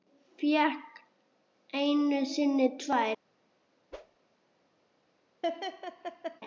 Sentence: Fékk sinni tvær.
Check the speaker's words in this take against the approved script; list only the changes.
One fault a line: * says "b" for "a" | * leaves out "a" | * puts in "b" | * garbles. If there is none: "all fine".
* puts in "einu"